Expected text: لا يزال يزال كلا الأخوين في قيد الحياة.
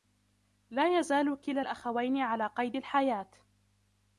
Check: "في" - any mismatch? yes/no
yes